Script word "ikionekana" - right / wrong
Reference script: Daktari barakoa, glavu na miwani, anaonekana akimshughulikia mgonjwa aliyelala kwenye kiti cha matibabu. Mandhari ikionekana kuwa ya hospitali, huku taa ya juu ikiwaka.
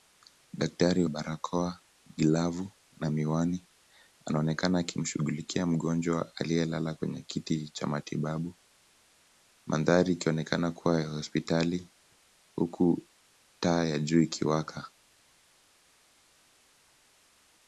right